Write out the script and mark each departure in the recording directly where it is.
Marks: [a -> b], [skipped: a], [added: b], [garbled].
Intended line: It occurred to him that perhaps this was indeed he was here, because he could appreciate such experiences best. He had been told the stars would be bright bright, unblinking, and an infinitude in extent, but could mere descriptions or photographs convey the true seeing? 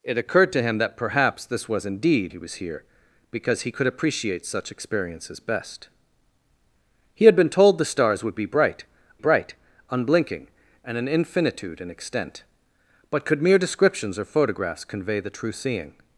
It occurred to him that perhaps this was indeed he was here, because he could appreciate such experiences best. He had been told the stars would be bright bright, unblinking, and an infinitude in extent, but could mere descriptions or photographs convey the true seeing?